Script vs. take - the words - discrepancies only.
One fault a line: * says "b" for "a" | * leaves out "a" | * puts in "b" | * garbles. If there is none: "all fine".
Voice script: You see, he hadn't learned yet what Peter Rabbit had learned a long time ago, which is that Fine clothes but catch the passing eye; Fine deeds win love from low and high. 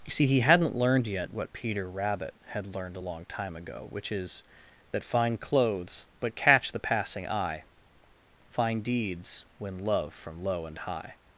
all fine